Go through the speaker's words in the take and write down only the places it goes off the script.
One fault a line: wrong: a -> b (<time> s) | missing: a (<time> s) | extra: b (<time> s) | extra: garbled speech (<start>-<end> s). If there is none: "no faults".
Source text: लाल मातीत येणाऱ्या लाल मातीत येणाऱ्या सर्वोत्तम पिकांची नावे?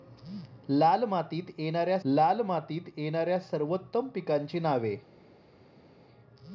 no faults